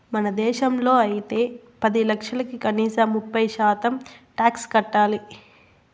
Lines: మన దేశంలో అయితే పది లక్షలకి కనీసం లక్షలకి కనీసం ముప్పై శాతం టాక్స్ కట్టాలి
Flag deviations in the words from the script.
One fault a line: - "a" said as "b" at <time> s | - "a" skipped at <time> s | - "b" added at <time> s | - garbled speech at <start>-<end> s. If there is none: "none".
- "లక్షలకి కనీసం" skipped at 3.1 s